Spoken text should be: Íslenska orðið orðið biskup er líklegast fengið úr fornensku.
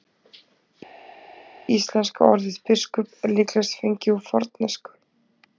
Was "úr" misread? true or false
false